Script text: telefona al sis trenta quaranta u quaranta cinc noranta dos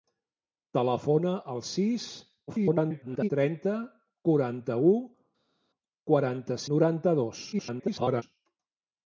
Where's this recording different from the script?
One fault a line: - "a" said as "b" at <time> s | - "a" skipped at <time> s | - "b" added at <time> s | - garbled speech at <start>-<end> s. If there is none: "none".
- garbled speech at 2.5-3.3 s
- "cinc" skipped at 6.6 s
- garbled speech at 7.5-8.2 s